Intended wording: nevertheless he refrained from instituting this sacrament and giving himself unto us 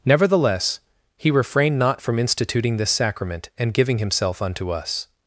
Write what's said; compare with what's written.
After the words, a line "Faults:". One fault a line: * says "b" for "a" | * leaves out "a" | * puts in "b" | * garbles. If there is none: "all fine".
nevertheless he refrained not from instituting this sacrament and giving himself unto us
Faults:
* puts in "not"